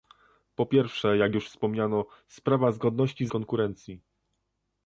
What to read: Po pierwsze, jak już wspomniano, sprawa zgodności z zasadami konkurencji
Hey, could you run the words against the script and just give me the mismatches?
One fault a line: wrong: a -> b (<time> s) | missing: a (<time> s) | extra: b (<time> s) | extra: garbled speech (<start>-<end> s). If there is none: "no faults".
missing: zasadami (3.3 s)